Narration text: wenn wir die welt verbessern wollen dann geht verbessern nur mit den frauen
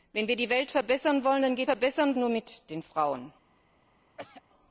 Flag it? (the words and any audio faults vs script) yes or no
yes